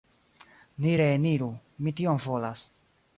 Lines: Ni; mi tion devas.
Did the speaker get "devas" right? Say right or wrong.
wrong